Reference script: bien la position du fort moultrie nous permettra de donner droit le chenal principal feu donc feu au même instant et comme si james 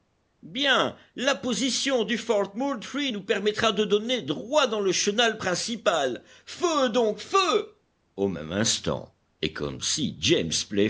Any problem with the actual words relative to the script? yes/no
yes